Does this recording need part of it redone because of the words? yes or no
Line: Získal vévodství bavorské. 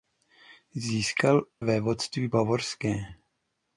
no